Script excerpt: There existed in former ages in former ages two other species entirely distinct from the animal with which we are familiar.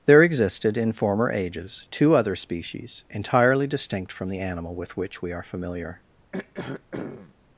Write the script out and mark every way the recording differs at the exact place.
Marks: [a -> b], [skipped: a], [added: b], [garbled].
There existed in former ages [skipped: in former ages] two other species entirely distinct from the animal with which we are familiar.